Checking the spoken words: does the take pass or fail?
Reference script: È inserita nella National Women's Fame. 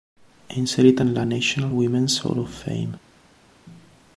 fail